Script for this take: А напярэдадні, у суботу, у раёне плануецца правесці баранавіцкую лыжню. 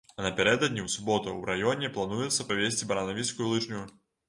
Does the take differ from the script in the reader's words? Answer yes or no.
no